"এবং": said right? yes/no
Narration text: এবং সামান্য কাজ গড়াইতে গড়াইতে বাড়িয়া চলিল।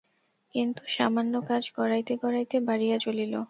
no